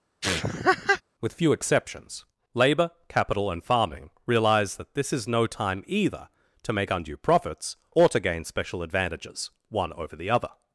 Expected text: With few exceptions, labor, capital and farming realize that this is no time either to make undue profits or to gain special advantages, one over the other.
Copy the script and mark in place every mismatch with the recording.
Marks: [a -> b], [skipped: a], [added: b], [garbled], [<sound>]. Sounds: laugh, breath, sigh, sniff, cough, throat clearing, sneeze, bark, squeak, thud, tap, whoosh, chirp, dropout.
[laugh] With few exceptions, labor, capital and farming realize that this is no time either to make undue profits or to gain special advantages, one over the other.